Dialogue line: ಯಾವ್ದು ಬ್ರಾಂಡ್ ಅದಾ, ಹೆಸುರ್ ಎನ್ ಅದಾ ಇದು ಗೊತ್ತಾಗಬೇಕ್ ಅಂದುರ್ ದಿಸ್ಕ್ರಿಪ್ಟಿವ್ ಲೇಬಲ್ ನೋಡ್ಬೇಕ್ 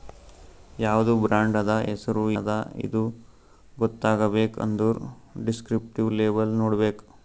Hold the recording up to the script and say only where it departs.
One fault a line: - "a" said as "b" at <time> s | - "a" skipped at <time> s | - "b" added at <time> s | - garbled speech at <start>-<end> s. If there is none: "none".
- "ಎನ್" skipped at 2.2 s